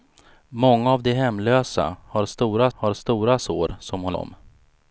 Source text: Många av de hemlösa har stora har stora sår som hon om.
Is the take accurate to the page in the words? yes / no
yes